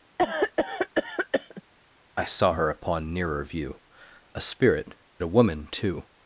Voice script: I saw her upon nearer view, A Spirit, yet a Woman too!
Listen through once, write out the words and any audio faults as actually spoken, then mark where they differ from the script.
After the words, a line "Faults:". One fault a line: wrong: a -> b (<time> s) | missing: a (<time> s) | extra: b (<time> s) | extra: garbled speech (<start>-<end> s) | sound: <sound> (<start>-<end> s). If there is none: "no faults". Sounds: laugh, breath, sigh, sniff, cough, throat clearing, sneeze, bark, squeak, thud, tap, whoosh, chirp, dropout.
I saw her upon nearer view, A Spirit, a Woman too!
Faults:
sound: cough (0.2-1.6 s)
missing: yet (4.9 s)